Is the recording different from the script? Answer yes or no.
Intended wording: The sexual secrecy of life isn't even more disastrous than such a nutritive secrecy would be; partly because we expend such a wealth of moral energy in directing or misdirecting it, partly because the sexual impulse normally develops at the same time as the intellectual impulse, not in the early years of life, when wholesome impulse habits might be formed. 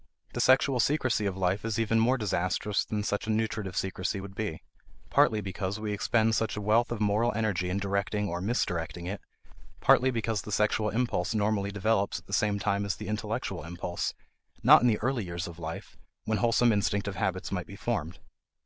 yes